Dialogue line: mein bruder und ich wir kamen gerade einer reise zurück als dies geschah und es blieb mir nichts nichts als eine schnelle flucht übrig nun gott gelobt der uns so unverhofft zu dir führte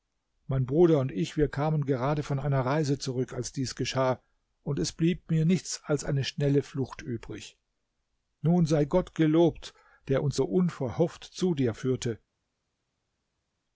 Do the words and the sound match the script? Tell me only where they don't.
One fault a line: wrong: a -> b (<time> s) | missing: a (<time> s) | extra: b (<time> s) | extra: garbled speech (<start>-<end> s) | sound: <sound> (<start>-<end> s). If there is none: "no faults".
extra: von (2.2 s)
missing: nichts (5.8 s)
extra: sei (8.7 s)